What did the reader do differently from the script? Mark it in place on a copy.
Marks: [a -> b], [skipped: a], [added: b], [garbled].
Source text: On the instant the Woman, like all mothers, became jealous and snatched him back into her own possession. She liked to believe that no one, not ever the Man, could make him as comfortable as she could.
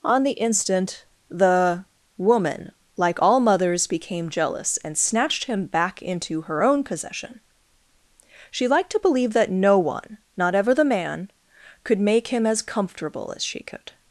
On the instant the Woman, like all mothers, became jealous and snatched him back into her own possession. She liked to believe that no one, not ever the Man, could make him as comfortable as she could.